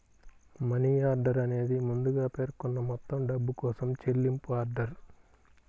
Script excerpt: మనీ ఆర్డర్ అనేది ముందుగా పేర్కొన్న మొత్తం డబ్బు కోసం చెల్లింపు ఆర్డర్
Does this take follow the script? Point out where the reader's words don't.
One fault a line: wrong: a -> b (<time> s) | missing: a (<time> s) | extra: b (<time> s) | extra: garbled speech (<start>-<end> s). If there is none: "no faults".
no faults